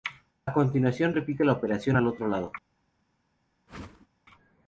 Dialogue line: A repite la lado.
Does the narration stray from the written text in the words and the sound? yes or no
yes